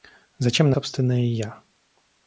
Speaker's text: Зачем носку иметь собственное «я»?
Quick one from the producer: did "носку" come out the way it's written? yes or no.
no